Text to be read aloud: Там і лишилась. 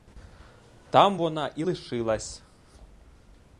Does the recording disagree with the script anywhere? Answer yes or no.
yes